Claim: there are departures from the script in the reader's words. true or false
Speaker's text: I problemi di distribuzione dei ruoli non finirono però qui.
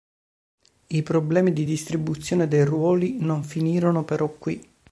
false